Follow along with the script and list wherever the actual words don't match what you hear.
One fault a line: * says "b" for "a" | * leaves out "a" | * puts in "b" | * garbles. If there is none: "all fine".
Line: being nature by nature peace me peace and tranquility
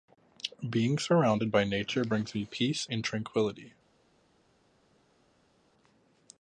* says "surrounded" for "nature"
* says "brings" for "peace"